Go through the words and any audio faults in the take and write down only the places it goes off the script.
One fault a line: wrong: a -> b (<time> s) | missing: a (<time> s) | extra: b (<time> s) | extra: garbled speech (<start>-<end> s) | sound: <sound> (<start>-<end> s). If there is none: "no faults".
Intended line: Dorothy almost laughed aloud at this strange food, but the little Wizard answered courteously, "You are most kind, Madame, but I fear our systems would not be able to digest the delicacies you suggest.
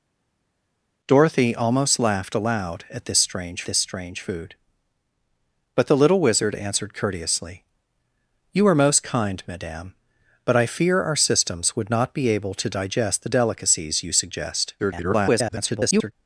extra: this strange (3.7 s)
extra: garbled speech (14.8-16.1 s)